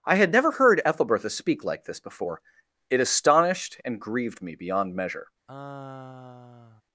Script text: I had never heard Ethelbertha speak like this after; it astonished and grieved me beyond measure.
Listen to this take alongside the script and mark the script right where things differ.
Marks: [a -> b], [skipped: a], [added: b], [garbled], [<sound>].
I had never heard Ethelbertha speak like this [after; -> before] it astonished and grieved me beyond measure. [sigh]